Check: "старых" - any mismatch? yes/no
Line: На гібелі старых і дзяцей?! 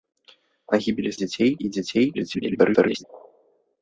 yes